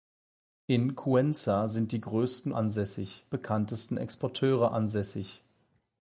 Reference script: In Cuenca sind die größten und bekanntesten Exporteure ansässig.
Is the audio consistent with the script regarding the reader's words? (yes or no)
no